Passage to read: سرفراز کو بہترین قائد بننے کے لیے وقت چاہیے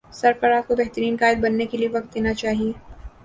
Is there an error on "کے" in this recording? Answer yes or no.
no